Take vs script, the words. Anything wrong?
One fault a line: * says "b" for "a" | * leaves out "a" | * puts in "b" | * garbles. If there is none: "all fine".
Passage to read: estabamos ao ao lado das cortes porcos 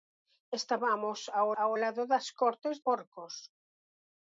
all fine